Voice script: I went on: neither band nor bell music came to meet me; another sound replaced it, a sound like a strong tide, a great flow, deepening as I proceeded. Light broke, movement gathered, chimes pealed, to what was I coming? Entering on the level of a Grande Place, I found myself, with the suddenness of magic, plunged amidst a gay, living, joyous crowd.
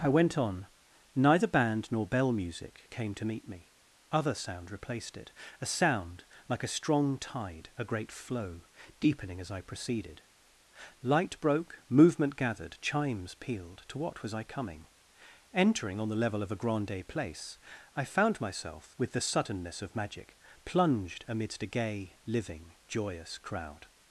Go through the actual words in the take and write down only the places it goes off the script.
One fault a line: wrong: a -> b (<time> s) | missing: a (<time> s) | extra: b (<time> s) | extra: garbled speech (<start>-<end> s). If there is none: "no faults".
wrong: another -> other (4.1 s)